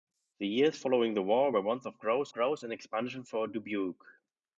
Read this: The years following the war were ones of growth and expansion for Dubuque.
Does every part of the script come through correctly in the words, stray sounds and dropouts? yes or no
no